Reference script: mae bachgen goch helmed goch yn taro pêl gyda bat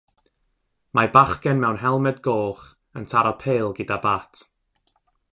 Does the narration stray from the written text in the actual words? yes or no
yes